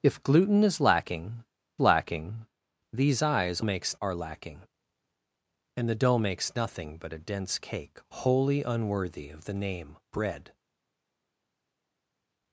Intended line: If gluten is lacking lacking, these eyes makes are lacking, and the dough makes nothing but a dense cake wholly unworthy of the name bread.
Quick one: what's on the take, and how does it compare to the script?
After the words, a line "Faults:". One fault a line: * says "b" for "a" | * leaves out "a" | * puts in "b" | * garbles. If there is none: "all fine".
If gluten is lacking lacking, these eyes makes are lacking, and the dough makes nothing but a dense cake wholly unworthy of the name bread.
Faults:
all fine